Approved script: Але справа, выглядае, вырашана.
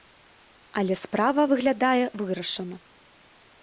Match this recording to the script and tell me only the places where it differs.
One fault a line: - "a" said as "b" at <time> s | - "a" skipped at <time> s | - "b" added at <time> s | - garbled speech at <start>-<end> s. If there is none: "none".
none